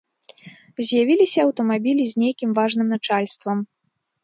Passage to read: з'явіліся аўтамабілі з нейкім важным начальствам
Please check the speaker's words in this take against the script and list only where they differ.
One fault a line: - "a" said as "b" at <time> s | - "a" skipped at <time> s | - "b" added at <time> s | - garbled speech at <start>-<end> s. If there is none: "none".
none